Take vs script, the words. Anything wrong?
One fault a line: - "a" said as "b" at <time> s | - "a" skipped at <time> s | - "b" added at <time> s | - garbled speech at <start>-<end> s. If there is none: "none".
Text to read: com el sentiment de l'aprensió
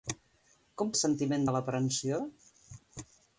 none